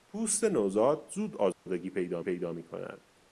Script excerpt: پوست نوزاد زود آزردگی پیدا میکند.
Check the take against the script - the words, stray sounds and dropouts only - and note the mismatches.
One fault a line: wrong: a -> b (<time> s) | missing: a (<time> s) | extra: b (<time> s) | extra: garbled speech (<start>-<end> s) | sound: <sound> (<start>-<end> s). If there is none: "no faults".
sound: dropout (1.5-1.7 s)
extra: پیدا (2.2 s)